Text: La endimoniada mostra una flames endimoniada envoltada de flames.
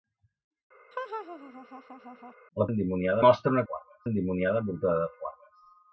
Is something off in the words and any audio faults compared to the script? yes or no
yes